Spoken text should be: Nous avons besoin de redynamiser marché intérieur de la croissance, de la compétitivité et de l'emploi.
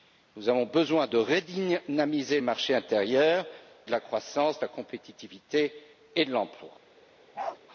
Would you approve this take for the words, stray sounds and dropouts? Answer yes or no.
no